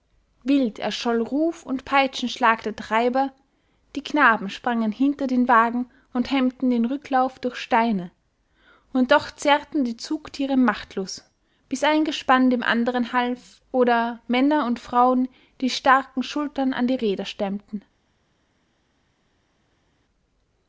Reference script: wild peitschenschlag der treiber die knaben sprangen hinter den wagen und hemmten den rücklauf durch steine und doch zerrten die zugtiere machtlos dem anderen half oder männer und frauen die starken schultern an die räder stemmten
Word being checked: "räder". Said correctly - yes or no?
yes